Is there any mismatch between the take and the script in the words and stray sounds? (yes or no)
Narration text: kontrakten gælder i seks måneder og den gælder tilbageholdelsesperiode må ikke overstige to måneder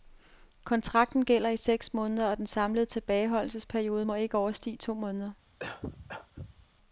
yes